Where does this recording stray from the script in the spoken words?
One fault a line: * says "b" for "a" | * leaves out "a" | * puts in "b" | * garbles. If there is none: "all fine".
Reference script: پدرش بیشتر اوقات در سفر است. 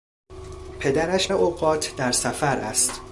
* leaves out "بیشتر"